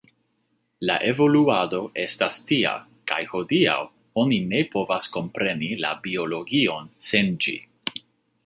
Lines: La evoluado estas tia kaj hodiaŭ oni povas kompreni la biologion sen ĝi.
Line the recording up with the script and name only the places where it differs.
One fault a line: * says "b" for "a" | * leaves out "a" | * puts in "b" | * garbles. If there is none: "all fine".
* puts in "ne"